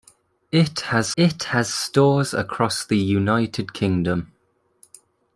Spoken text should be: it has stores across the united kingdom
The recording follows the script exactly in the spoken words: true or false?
false